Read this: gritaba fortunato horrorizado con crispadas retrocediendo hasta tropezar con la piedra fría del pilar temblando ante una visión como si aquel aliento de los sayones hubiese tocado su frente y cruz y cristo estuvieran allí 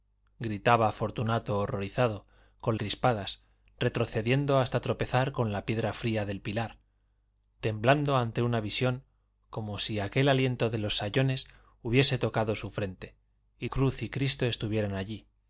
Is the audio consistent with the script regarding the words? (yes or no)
yes